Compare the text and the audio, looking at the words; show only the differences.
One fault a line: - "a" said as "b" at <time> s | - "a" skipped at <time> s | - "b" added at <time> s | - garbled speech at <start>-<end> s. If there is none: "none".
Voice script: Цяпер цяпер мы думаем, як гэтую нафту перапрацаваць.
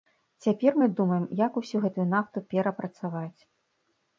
- "цяпер" skipped at 0.8 s
- "усю" added at 1.6 s